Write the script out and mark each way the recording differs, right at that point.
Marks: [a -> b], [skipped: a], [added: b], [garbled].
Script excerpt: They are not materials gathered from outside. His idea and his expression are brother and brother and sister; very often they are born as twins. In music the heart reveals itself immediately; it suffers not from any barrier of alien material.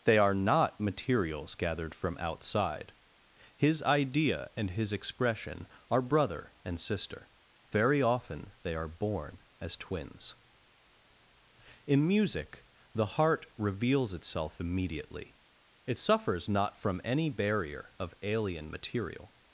They are not materials gathered from outside. His idea and his expression are brother and [skipped: brother and] sister; very often they are born as twins. In music the heart reveals itself immediately; it suffers not from any barrier of alien material.